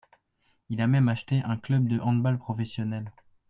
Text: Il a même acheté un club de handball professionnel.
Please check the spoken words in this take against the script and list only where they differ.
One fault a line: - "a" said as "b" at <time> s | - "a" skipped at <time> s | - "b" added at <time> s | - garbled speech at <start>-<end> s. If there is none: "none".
none